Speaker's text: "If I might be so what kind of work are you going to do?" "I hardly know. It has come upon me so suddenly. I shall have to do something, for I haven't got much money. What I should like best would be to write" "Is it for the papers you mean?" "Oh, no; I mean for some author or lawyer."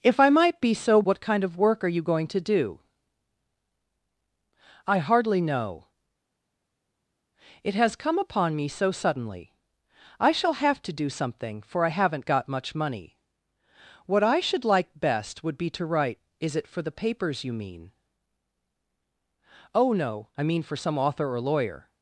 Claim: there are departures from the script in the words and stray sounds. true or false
false